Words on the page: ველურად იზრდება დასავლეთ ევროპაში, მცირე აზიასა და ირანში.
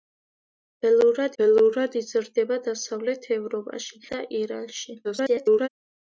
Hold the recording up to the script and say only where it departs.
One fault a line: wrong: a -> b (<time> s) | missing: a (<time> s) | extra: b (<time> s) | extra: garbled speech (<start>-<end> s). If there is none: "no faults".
extra: ველურად (1.4 s)
missing: მცირე აზიასა (4.0 s)
extra: garbled speech (5.0-5.7 s)